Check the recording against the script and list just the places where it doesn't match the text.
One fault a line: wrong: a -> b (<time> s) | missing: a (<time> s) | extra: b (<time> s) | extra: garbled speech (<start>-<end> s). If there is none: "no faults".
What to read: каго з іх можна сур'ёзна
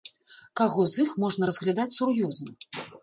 extra: разглядаць (1.5 s)